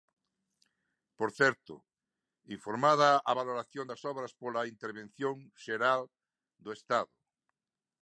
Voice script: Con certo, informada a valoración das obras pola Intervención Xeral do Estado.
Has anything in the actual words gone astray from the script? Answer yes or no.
yes